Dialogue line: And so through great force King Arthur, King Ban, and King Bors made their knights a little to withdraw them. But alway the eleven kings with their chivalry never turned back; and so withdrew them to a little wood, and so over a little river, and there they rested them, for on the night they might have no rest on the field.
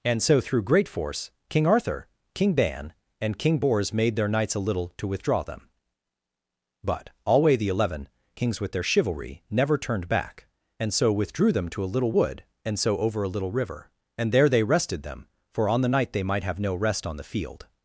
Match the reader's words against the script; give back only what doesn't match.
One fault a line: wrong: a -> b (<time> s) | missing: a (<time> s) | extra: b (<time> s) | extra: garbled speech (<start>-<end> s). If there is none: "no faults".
no faults